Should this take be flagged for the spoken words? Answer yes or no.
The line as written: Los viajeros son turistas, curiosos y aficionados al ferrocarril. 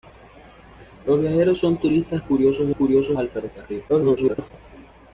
yes